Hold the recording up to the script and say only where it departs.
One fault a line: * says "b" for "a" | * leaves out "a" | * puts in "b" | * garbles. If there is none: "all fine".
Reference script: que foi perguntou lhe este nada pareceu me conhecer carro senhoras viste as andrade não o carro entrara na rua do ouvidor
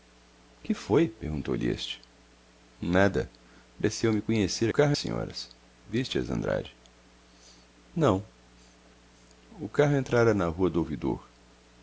all fine